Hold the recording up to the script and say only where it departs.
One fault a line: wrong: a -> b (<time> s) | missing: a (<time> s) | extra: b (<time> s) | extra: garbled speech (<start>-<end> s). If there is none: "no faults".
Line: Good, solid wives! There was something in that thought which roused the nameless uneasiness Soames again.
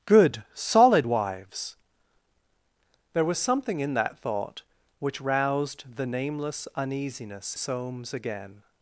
no faults